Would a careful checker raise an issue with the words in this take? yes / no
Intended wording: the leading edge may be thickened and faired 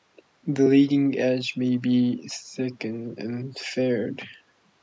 no